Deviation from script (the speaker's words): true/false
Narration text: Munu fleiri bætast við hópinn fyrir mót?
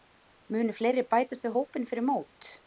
false